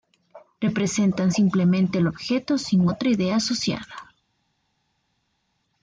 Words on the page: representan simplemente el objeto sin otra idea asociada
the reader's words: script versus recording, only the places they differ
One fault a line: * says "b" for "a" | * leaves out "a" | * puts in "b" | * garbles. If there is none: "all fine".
all fine